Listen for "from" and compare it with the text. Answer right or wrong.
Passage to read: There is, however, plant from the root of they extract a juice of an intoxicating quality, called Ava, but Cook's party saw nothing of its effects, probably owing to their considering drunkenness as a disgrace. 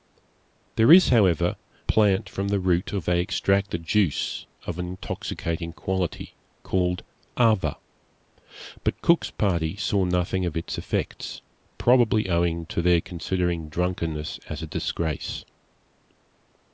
right